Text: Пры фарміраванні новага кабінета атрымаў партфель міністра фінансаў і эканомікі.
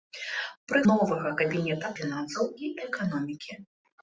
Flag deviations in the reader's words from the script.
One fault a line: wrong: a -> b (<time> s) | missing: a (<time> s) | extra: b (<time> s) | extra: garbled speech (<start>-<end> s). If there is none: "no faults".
missing: фарміраванні (0.8 s)
missing: атрымаў партфель міністра (1.9 s)